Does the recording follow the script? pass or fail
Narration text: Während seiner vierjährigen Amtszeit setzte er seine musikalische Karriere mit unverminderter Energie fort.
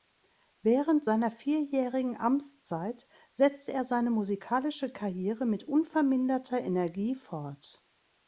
pass